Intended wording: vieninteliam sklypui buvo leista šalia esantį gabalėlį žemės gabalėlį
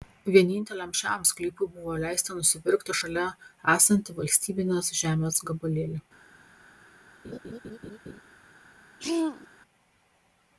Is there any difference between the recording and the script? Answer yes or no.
yes